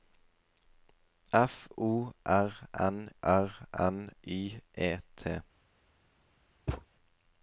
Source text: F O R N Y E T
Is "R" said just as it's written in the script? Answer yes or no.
yes